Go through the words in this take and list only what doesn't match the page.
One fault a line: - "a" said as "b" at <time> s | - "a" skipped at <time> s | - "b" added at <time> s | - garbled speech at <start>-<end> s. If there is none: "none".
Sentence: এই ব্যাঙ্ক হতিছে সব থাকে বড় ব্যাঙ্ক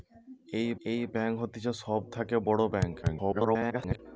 - "এই" added at 0.9 s
- garbled speech at 3.0-4.0 s